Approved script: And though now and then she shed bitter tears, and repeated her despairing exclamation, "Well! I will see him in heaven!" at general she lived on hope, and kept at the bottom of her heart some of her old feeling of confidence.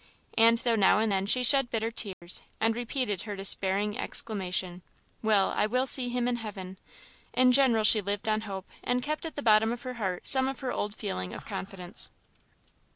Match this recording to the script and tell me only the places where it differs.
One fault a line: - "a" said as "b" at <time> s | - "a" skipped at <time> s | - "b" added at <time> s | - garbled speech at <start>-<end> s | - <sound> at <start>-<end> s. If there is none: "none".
- dropout at 2.1-2.2 s
- "at" said as "in" at 7.3 s